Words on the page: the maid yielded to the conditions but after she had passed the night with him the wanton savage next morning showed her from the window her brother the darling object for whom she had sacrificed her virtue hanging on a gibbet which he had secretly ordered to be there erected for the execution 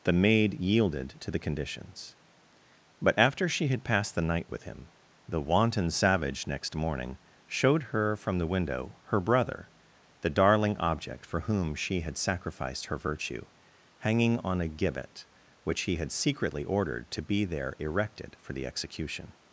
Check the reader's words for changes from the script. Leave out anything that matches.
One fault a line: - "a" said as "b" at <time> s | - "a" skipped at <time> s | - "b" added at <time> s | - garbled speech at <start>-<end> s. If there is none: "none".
none